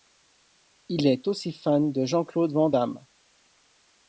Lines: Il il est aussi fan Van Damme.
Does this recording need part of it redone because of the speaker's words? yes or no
yes